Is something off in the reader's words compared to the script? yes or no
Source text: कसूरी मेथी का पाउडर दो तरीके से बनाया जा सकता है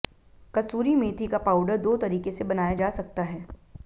no